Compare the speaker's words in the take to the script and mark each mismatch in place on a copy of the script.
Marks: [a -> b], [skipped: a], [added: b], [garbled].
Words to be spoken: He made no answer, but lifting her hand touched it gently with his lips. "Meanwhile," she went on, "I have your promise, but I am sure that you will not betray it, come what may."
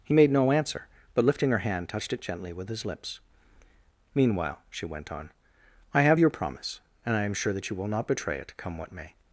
He made no answer, but lifting her hand touched it gently with his lips. "Meanwhile," she went on, "I have your promise, [but -> and] I am sure that you will not betray it, come what may."